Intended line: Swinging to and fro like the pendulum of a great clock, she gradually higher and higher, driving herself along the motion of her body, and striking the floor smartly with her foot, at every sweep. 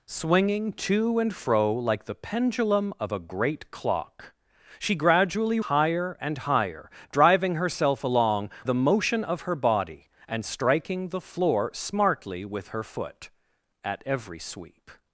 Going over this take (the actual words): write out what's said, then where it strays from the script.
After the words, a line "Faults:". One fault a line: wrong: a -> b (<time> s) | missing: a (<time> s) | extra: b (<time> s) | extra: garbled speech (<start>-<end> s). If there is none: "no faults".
Swinging to and fro like the pendulum of a great clock, she gradually higher and higher, driving herself along the motion of her body, and striking the floor smartly with her foot, at every sweep.
Faults:
no faults